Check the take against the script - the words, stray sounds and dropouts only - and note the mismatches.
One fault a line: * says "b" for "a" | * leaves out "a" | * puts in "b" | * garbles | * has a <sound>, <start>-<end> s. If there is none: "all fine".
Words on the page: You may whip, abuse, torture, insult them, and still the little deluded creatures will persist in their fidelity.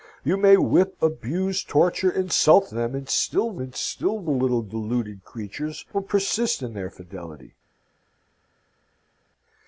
* puts in "and still the"